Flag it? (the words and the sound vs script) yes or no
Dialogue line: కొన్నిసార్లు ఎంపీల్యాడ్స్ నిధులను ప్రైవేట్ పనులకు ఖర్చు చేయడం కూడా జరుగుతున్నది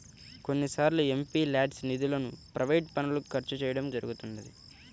yes